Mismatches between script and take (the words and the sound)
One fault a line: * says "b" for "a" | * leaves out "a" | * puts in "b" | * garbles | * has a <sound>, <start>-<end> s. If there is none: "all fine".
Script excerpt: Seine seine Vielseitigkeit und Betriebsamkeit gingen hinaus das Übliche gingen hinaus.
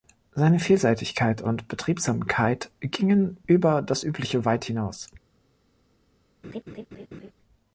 * leaves out "seine"
* says "über" for "hinaus"
* says "weit" for "gingen"
* has a laugh, 6.4-7.3 s